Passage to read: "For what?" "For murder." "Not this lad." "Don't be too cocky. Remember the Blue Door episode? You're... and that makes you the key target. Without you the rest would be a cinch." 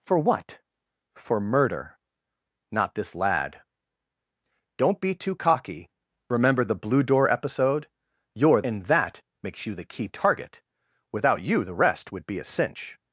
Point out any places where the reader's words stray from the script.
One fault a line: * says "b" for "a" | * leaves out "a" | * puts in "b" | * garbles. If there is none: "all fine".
all fine